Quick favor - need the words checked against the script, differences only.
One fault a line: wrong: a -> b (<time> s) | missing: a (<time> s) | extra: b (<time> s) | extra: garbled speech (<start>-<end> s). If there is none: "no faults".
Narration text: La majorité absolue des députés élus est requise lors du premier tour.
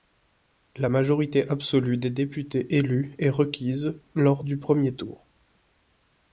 no faults